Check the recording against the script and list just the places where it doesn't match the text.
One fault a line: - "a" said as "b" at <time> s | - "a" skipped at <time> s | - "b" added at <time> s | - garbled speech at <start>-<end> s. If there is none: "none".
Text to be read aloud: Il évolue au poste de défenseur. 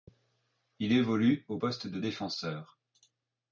none